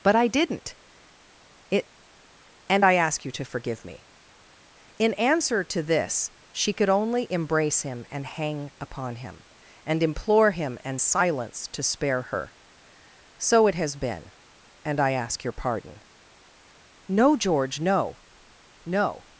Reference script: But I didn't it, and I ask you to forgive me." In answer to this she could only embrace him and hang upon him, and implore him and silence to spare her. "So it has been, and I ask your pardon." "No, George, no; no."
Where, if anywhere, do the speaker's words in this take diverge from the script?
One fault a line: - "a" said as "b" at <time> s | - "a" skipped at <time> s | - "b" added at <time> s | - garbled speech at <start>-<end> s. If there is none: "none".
none